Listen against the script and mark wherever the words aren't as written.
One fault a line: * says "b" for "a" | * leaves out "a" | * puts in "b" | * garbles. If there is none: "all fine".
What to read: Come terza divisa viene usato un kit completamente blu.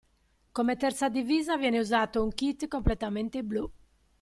all fine